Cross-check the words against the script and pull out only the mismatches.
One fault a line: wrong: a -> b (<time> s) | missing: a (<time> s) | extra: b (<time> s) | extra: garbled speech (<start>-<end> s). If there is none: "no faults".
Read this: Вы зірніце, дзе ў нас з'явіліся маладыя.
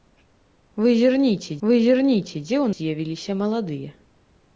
extra: вы зірніце (1.7 s)
missing: нас (2.7 s)